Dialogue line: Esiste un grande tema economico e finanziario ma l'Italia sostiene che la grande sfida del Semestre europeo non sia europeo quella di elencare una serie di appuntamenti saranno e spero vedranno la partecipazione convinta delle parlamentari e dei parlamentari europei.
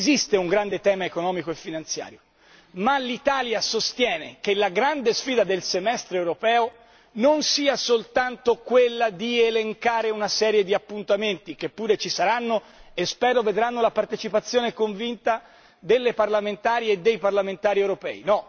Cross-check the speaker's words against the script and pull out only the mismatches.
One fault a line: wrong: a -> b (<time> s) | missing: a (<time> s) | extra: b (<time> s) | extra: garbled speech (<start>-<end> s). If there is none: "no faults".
wrong: europeo -> soltanto (7.8 s)
extra: che pure ci (11.5 s)